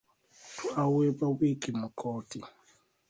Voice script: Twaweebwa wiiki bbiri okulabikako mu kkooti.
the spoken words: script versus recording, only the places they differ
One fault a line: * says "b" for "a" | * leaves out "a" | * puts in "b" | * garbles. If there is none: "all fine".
* leaves out "bbiri okulabikako"